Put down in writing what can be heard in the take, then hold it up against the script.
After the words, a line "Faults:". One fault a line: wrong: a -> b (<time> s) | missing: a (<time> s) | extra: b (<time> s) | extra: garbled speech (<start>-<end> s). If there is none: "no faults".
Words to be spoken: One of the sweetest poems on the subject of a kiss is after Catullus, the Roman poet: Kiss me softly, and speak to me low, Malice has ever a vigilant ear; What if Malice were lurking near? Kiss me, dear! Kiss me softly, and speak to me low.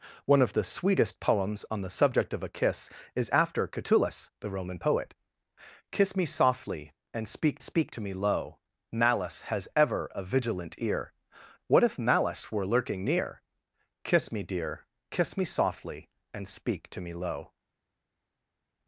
One of the sweetest poems on the subject of a kiss is after Catullus, the Roman poet: Kiss me softly, and speak speak to me low, Malice has ever a vigilant ear; What if Malice were lurking near? Kiss me, dear! Kiss me softly, and speak to me low.
Faults:
extra: speak (7.6 s)